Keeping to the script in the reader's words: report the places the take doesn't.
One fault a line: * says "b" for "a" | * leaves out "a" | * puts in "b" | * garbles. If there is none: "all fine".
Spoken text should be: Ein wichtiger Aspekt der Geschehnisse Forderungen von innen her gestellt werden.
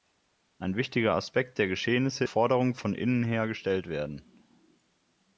all fine